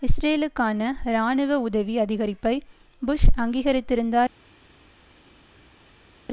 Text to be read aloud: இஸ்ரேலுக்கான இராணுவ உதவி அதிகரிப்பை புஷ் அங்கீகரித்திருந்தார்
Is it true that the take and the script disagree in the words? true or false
false